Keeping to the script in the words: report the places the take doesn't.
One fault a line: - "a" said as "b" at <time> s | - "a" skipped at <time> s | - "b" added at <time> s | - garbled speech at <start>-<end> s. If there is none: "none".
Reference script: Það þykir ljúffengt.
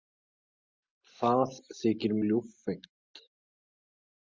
none